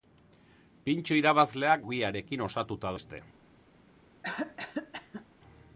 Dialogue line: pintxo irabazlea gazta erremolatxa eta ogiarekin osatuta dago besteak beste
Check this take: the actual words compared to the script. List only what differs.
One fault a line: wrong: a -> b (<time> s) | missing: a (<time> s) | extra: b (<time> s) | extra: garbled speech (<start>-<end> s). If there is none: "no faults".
missing: gazta erremolatxa eta (1.8 s)
missing: dago besteak (3.0 s)